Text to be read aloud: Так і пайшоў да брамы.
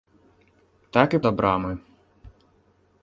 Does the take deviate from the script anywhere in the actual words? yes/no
yes